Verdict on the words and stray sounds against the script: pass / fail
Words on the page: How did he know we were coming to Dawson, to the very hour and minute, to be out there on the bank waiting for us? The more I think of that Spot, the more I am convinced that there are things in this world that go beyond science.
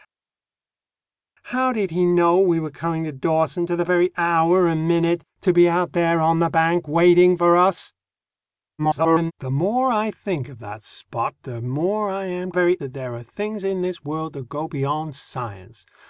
fail